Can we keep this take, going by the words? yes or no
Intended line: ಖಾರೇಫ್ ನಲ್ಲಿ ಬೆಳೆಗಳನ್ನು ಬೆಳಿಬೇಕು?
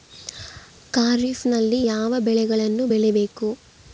no